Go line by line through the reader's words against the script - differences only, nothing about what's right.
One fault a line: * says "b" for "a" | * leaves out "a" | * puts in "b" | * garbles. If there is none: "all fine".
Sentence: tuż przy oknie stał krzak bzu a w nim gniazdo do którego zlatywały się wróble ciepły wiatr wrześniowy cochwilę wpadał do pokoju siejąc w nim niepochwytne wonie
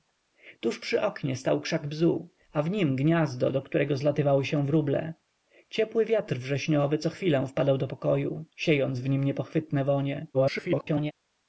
* garbles